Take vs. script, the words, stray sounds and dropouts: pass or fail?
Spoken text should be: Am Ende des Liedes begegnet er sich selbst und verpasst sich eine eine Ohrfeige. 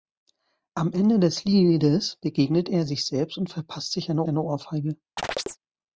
fail